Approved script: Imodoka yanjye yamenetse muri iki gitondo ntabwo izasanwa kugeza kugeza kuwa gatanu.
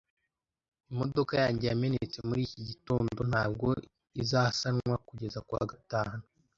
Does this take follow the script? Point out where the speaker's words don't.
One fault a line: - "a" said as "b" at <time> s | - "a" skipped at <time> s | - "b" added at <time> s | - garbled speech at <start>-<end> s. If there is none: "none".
- "kugeza" skipped at 5.4 s